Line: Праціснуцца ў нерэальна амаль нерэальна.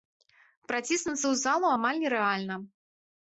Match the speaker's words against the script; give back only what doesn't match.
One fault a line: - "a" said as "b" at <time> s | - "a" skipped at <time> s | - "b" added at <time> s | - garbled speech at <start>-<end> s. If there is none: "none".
- "нерэальна" said as "залу" at 1.4 s